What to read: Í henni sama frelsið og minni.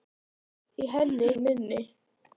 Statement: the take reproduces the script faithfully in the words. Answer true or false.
false